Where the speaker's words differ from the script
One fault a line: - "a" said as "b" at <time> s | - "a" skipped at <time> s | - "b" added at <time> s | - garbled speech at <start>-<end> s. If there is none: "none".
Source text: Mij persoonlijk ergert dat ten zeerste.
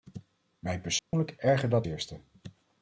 - "ten" skipped at 1.9 s